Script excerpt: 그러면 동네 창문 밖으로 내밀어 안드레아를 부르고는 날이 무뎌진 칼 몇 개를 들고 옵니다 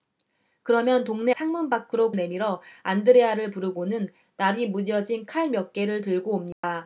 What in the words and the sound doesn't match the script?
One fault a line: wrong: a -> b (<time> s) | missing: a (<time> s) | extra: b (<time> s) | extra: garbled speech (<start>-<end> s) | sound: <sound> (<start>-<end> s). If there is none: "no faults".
sound: dropout (6.5-6.6 s)